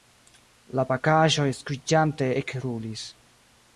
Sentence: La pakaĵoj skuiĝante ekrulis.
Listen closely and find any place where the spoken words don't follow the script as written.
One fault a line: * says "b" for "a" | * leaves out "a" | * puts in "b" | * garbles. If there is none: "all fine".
all fine